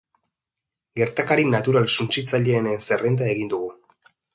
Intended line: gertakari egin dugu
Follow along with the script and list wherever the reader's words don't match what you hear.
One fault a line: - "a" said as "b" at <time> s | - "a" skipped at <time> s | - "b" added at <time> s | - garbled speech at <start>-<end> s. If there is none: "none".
- "natural suntsitzaileenen zerrenda" added at 1.5 s